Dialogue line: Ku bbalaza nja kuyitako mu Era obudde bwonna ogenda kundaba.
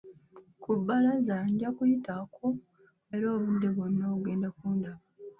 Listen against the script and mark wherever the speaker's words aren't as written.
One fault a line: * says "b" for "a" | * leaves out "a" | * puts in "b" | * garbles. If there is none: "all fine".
all fine